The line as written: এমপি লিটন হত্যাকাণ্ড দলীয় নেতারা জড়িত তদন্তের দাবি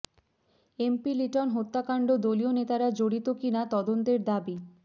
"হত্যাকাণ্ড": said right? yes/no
yes